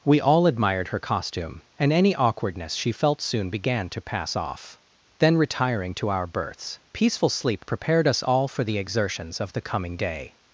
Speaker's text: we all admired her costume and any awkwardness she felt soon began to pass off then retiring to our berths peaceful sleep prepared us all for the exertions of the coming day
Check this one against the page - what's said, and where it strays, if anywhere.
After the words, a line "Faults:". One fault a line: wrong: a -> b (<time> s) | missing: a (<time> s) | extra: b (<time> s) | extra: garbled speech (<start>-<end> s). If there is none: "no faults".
we all admired her costume and any awkwardness she felt soon began to pass off then retiring to our berths peaceful sleep prepared us all for the exertions of the coming day
Faults:
no faults